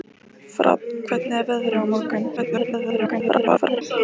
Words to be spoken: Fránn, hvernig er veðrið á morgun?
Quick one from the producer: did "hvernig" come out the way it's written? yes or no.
yes